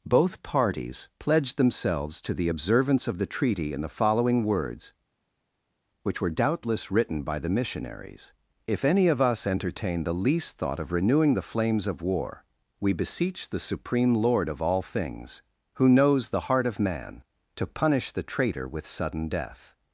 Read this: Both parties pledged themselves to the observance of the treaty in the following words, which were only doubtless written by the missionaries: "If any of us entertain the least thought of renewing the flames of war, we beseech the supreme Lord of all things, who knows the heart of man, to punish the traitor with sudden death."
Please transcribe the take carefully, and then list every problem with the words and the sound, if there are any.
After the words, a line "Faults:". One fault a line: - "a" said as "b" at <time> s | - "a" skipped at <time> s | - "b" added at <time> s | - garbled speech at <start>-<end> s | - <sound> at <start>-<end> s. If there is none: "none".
Both parties pledged themselves to the observance of the treaty in the following words, which were doubtless written by the missionaries: "If any of us entertain the least thought of renewing the flames of war, we beseech the supreme Lord of all things, who knows the heart of man, to punish the traitor with sudden death."
Faults:
- "only" skipped at 6.3 s